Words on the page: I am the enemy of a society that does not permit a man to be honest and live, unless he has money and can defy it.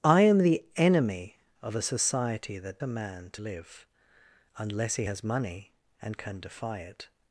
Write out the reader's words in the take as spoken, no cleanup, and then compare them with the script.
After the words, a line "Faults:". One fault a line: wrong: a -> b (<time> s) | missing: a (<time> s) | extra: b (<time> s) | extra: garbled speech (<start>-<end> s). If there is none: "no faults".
I am the enemy of a society that a man to live, unless he has money and can defy it.
Faults:
missing: does not permit (2.8 s)
missing: be honest and (3.4 s)